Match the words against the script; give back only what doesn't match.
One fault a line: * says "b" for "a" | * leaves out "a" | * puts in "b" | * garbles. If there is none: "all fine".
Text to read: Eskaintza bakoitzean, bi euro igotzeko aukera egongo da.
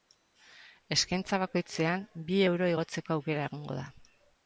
all fine